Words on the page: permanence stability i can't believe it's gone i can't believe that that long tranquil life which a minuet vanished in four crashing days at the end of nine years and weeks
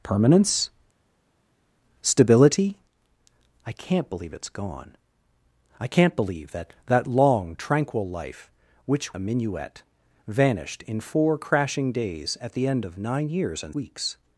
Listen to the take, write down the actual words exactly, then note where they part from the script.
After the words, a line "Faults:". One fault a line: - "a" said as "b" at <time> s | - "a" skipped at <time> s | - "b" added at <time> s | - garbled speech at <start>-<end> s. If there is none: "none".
permanence stability i can't believe it's gone i can't believe that that long tranquil life which a minuet vanished in four crashing days at the end of nine years and weeks
Faults:
none